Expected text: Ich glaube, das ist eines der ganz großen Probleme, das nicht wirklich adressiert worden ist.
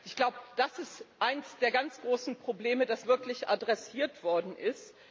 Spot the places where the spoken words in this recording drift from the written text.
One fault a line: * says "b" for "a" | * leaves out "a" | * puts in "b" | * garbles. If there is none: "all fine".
* leaves out "nicht"